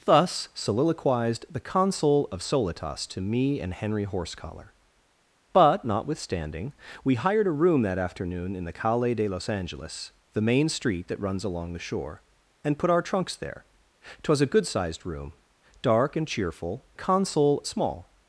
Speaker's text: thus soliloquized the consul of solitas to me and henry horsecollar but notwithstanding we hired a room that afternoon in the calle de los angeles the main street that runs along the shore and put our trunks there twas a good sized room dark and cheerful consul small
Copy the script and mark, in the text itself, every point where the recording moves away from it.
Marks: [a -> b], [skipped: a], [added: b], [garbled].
thus soliloquized the consul of solitas to me and henry horsecollar but notwithstanding we hired a room that afternoon in the calle de los angeles the main street that runs along the shore and put our trunks there twas a good sized room dark and cheerful consul small